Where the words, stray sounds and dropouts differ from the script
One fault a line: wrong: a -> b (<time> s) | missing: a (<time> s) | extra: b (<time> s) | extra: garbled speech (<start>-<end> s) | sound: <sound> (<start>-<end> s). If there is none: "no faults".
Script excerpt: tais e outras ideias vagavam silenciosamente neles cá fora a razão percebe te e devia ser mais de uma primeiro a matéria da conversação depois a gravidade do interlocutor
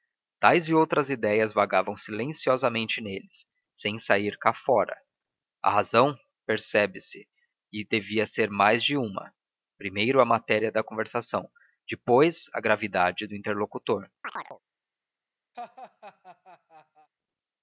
extra: sem sair (3.7 s)
wrong: te -> se (7.0 s)
sound: chirp (14.2-14.6 s)
sound: laugh (15.5-17.1 s)